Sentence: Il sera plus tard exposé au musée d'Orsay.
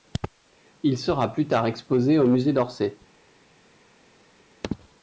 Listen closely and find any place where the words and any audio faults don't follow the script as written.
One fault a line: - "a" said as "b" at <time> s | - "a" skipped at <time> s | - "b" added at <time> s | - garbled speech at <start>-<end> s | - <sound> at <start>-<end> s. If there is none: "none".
none